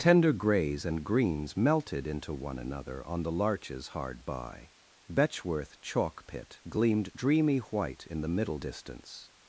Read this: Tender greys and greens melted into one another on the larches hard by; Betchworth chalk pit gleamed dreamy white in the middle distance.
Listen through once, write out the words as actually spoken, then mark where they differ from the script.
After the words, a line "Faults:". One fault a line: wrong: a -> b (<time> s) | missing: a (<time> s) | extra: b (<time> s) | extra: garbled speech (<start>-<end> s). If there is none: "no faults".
Tender greys and greens melted into one another on the larches hard by; Betchworth chalk pit gleamed dreamy white in the middle distance.
Faults:
no faults